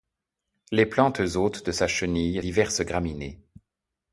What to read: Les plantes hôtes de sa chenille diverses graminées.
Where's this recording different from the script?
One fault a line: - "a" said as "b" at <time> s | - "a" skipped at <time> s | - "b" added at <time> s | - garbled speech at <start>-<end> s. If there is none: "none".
none